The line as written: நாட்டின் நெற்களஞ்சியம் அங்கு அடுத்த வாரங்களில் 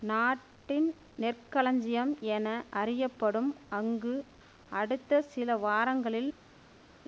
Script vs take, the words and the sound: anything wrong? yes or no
yes